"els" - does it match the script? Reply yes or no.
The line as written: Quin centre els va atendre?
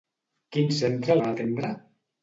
no